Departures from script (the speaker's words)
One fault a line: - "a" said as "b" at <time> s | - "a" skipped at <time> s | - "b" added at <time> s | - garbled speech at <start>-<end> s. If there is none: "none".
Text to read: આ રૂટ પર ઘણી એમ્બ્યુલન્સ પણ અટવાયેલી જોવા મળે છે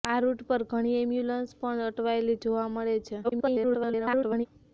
- garbled speech at 3.2-4.5 s